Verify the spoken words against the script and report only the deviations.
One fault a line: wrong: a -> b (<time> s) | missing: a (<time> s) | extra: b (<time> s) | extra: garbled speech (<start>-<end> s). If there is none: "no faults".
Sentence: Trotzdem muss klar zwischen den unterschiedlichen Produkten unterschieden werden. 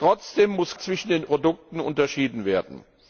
missing: klar (0.8 s)
missing: unterschiedlichen (1.2 s)